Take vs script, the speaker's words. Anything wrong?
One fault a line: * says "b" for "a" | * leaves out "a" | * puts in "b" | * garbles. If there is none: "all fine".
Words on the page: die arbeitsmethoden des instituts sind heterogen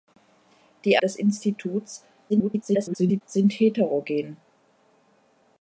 * leaves out "arbeitsmethoden"
* garbles